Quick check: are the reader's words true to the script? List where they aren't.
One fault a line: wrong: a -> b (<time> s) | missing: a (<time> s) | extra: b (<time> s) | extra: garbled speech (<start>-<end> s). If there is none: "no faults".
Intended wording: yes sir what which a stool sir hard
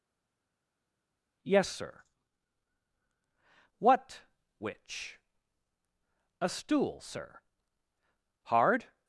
no faults